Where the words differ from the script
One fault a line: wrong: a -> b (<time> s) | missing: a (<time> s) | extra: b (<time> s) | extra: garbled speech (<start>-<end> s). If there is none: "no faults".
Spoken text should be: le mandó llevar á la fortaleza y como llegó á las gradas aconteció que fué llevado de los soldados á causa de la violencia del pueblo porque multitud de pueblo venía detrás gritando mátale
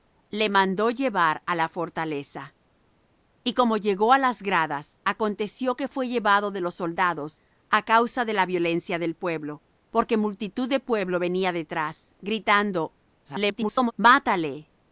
extra: garbled speech (13.2-13.9 s)